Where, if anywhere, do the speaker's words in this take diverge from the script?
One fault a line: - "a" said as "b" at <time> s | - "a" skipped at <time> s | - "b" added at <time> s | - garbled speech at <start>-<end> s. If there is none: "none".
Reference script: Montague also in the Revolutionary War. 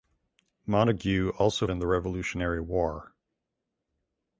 none